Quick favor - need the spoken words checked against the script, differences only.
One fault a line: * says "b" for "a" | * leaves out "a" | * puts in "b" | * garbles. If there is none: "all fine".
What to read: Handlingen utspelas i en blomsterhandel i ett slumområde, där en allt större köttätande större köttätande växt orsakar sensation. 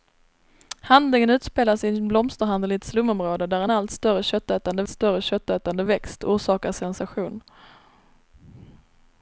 all fine